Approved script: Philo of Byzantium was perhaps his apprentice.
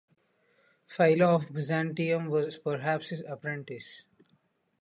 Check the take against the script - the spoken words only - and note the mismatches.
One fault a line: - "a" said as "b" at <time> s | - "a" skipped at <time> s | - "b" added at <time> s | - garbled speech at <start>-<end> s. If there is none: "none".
none